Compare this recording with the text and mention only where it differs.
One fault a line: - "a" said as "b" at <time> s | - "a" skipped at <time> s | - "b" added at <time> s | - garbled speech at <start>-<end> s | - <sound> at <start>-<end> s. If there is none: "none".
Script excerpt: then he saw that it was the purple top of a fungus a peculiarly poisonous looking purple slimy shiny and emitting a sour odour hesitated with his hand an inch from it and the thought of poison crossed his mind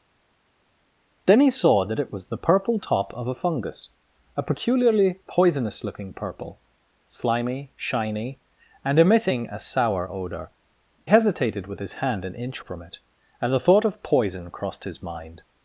none